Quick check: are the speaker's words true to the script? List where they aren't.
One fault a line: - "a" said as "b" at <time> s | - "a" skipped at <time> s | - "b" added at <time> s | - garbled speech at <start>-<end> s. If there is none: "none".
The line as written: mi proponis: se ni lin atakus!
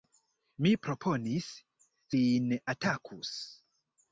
- "se ni" skipped at 1.5 s